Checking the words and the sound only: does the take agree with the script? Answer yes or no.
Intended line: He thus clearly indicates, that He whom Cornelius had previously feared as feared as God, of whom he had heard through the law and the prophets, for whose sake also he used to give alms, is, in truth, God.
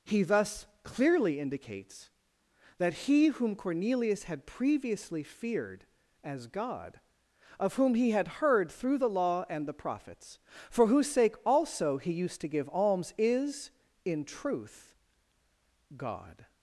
no